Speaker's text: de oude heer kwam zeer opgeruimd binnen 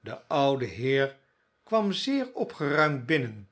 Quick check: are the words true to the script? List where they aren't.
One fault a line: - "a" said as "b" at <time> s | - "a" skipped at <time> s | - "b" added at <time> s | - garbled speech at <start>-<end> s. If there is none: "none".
none